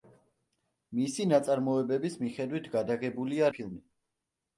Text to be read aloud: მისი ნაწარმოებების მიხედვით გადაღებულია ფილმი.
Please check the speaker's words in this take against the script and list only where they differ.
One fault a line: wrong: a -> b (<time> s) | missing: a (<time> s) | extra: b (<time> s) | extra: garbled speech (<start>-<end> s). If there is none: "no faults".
no faults